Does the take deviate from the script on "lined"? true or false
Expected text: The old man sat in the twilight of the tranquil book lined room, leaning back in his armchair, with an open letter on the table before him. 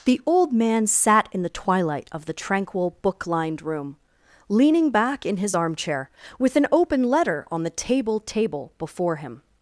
false